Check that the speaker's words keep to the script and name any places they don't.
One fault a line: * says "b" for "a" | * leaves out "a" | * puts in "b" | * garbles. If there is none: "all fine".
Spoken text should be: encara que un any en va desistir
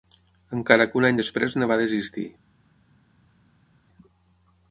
* puts in "després"